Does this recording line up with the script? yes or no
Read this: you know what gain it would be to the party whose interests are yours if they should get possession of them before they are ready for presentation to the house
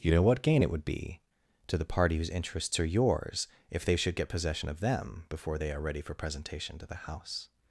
yes